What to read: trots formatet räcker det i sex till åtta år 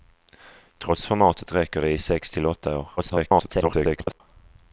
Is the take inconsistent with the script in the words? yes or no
yes